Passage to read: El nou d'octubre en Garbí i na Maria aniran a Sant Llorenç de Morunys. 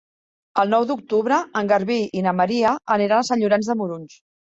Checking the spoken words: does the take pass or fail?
pass